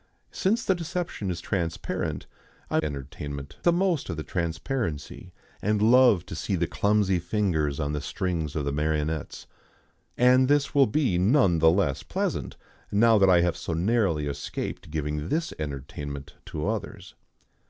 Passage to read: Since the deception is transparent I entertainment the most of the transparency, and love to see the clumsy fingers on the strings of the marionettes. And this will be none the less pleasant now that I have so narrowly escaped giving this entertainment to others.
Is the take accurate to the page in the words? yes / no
yes